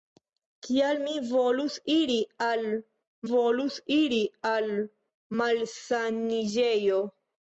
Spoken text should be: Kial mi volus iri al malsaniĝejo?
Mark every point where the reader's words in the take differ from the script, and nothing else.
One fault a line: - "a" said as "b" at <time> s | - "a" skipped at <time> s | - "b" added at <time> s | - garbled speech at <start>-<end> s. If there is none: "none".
- "volus iri al" added at 3.3 s